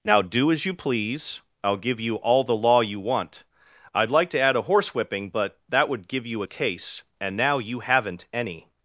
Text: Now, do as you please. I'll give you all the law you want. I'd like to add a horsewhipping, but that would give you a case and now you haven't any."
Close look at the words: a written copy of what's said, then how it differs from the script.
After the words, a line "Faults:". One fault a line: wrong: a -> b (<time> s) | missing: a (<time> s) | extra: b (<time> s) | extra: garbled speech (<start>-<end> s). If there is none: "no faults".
Now, do as you please. I'll give you all the law you want. I'd like to add a horsewhipping, but that would give you a case and now you haven't any."
Faults:
no faults